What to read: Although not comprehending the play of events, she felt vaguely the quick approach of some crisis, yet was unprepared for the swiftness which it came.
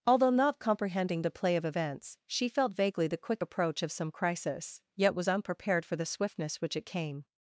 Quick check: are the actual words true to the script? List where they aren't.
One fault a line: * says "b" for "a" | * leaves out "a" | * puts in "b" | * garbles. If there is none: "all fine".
all fine